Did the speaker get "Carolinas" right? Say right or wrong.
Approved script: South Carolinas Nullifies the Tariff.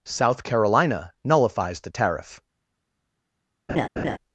wrong